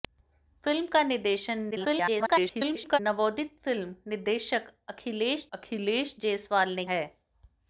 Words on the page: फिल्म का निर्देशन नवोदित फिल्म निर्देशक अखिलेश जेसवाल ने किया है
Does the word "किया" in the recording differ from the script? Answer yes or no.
yes